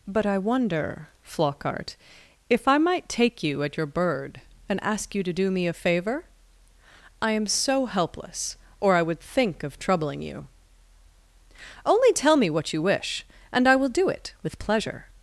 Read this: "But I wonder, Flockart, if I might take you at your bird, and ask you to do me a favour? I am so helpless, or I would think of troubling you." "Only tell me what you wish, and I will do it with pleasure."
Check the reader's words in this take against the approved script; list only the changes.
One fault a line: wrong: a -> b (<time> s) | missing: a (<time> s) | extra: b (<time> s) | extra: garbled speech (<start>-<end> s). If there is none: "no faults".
no faults